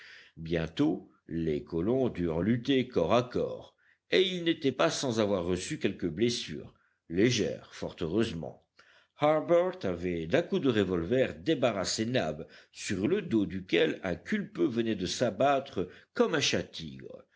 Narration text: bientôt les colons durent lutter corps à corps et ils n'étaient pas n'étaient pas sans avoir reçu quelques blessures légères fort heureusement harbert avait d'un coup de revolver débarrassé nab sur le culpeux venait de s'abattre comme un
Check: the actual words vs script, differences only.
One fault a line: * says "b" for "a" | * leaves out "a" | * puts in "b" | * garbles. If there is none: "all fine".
* leaves out "n'étaient pas"
* puts in "dos duquel un"